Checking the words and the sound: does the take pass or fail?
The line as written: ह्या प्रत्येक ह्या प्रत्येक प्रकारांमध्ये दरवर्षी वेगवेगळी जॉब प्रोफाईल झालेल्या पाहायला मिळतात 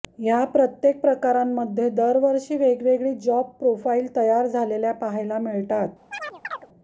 fail